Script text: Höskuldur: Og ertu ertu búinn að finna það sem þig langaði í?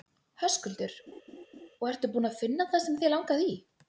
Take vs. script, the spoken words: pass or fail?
fail